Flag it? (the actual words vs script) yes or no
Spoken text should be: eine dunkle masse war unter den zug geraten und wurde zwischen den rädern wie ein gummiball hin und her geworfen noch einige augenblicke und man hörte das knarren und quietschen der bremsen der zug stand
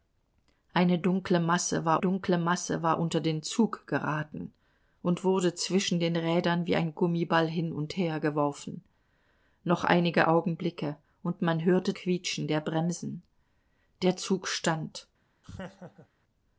yes